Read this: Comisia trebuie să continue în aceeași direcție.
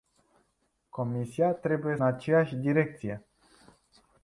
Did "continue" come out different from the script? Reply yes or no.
yes